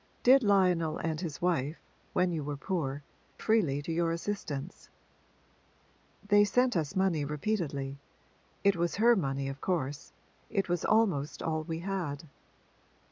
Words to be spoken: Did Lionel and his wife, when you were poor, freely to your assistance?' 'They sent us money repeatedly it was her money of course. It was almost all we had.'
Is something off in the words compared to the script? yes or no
no